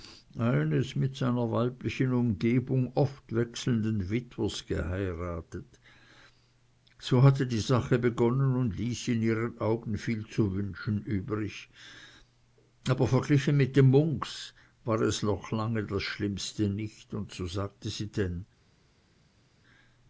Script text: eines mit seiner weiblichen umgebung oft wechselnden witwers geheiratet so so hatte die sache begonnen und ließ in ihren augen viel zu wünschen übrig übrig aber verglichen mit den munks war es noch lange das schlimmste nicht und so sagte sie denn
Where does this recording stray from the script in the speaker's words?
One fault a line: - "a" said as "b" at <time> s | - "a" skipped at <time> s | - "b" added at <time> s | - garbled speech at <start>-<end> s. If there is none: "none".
- "so" skipped at 7.2 s
- "übrig" skipped at 11.7 s